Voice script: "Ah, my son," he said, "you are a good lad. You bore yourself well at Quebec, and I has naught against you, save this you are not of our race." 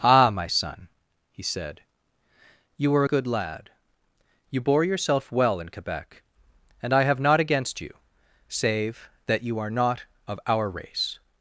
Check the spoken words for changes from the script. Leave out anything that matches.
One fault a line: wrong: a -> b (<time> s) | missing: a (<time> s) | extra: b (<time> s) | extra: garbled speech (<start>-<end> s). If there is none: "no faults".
wrong: at -> in (5.6 s)
wrong: has -> have (7.0 s)
wrong: this -> that (9.3 s)